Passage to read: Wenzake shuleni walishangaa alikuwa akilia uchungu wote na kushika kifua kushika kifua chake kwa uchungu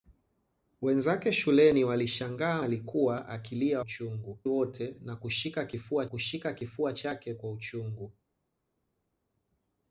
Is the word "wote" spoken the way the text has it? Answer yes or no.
yes